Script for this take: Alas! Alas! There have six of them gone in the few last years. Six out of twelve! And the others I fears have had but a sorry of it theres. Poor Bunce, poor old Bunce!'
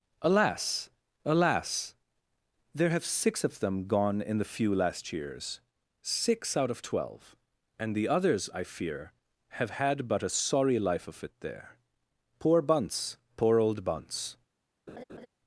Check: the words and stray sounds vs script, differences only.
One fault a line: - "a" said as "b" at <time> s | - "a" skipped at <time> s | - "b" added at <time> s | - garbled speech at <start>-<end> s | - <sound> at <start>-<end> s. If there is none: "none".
- "fears" said as "fear" at 8.6 s
- "life" added at 10.8 s
- "theres" said as "there" at 11.4 s
- laugh at 14.9-15.3 s